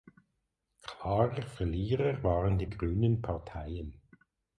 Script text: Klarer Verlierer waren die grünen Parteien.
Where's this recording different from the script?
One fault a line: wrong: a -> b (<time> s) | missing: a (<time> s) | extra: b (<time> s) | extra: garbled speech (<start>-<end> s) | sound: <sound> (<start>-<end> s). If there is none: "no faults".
no faults